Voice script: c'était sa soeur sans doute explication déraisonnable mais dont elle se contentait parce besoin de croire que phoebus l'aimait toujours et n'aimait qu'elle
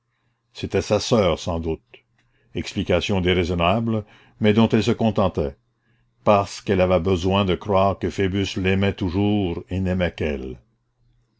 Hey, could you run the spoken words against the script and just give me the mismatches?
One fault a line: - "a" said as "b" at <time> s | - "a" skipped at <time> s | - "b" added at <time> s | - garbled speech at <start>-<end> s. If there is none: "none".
- "qu'elle avait" added at 6.6 s